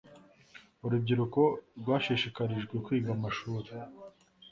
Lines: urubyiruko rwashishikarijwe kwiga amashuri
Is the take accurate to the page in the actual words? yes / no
yes